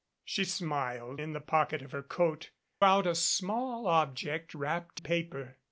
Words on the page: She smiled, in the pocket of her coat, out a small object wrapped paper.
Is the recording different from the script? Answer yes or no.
no